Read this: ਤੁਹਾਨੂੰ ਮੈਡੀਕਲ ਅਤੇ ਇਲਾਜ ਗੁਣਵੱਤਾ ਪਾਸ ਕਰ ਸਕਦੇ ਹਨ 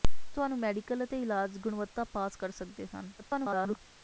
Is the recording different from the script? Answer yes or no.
yes